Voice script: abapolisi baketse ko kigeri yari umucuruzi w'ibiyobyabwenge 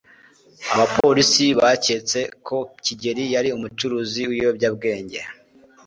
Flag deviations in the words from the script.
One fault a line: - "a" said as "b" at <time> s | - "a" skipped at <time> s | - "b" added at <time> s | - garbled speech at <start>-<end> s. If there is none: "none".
none